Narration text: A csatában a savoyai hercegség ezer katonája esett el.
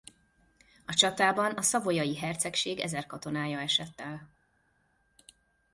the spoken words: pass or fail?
pass